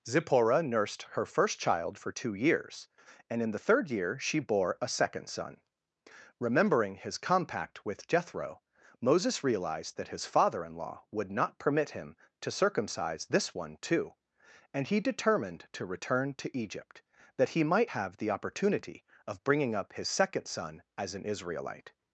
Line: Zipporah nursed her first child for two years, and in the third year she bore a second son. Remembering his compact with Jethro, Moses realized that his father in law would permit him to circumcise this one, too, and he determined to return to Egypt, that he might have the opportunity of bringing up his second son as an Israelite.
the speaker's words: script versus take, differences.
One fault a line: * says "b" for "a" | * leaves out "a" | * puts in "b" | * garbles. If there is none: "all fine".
* puts in "not"